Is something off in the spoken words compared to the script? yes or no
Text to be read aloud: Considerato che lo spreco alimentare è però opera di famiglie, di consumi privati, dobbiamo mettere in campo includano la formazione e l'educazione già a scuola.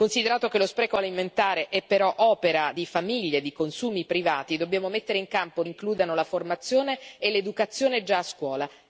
no